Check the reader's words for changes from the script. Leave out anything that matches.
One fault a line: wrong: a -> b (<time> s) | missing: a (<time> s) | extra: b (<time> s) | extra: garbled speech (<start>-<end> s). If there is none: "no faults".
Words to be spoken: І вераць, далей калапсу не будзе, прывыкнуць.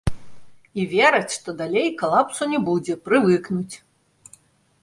extra: што (1.4 s)